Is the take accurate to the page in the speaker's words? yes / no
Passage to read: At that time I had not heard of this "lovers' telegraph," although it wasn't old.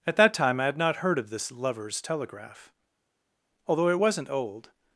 yes